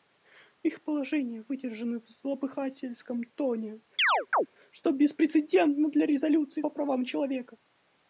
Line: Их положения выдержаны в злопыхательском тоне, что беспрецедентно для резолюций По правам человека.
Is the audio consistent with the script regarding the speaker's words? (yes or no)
yes